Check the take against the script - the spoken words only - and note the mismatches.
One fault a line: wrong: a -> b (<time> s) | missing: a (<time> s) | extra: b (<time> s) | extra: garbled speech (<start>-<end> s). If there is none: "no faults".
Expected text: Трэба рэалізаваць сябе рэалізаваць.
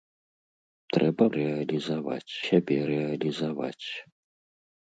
no faults